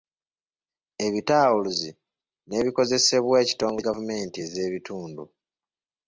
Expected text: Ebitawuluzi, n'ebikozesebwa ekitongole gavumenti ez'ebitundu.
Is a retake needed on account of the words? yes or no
no